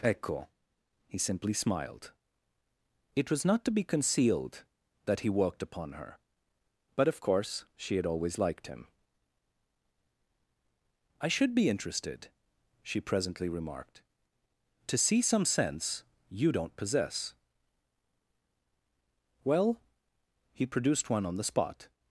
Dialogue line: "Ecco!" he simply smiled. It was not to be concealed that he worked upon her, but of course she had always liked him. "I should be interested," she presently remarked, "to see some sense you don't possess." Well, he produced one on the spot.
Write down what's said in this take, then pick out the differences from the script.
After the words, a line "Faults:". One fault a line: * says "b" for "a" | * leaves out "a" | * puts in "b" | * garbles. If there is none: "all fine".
"Ecco!" he simply smiled. It was not to be concealed that he worked upon her, but of course she had always liked him. "I should be interested," she presently remarked, "to see some sense you don't possess." Well, he produced one on the spot.
Faults:
all fine